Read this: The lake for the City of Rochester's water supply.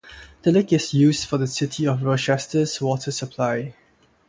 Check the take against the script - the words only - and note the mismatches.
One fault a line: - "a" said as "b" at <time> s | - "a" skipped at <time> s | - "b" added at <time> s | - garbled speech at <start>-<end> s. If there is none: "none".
- "is used" added at 0.7 s